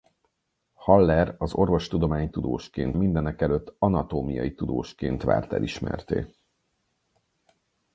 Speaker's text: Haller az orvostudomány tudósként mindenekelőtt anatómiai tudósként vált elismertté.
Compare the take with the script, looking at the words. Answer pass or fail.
pass